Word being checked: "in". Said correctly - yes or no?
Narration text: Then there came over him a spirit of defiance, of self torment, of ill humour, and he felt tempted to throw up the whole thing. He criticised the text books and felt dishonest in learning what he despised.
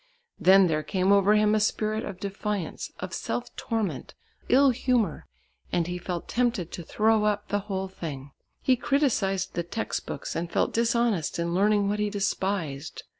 yes